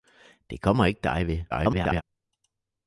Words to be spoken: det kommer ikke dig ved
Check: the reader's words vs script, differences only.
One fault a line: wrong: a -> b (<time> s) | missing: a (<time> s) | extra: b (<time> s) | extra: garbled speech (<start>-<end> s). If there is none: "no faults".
extra: garbled speech (1.5-2.0 s)